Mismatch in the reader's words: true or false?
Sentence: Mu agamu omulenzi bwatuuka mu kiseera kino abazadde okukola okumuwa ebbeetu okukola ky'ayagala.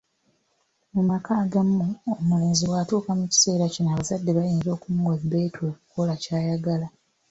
true